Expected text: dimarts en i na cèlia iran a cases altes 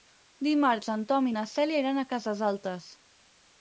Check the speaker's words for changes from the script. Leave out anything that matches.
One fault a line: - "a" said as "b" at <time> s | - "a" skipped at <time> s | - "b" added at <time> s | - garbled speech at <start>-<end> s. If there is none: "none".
- "tom" added at 1.1 s